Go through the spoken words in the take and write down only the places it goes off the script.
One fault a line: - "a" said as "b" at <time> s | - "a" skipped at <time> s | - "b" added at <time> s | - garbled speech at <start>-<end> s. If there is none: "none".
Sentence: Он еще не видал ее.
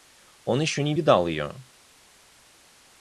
none